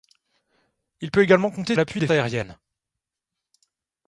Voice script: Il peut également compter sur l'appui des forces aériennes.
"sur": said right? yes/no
no